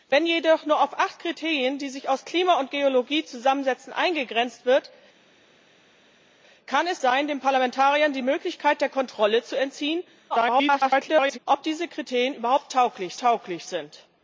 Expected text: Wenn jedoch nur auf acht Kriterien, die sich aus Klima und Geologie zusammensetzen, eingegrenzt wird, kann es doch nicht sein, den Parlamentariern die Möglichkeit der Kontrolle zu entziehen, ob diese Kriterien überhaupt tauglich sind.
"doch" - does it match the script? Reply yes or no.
no